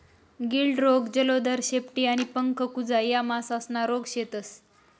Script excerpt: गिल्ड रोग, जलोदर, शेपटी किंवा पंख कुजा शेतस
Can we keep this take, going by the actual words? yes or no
no